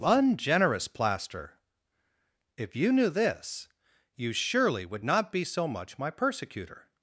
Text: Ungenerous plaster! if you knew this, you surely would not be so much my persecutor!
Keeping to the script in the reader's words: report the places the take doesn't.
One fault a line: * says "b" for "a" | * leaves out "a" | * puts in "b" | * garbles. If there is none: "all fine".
all fine